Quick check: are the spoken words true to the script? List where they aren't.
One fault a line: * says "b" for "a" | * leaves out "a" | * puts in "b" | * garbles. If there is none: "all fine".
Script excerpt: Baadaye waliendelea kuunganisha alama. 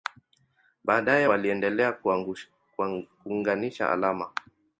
all fine